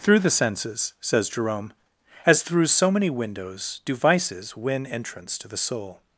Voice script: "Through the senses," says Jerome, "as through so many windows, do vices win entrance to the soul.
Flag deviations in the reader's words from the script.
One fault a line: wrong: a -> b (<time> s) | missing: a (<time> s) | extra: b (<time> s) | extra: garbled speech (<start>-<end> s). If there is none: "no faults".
no faults